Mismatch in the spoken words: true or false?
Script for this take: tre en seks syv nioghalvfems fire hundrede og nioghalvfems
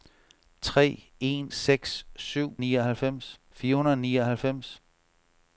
false